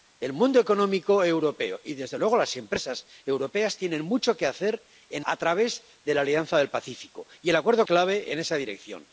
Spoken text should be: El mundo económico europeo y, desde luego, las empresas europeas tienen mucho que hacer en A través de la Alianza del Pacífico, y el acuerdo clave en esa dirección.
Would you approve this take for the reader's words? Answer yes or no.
yes